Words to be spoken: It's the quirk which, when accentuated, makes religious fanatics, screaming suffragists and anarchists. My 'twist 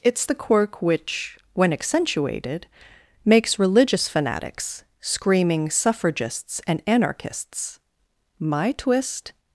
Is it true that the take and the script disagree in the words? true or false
false